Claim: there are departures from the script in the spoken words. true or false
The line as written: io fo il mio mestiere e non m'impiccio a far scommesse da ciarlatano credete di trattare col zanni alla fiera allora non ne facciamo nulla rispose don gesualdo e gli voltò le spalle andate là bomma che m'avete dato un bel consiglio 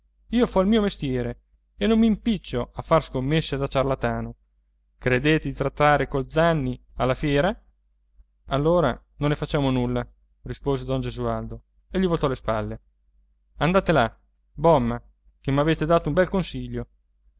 false